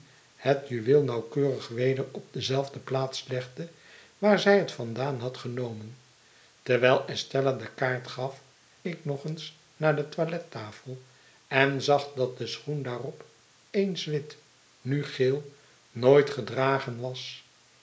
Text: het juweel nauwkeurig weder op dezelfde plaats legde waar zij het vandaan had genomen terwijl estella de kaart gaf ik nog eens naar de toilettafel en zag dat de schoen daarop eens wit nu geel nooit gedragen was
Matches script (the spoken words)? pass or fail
pass